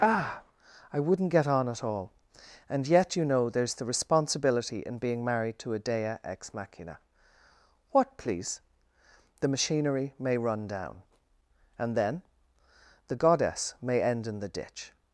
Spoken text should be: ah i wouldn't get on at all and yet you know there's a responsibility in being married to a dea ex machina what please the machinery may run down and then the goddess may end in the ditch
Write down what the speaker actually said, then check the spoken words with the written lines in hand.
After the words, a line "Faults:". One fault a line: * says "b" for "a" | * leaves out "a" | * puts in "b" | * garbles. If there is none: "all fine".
ah i wouldn't get on at all and yet you know there's the responsibility in being married to a dea ex machina what please the machinery may run down and then the goddess may end in the ditch
Faults:
* says "the" for "a"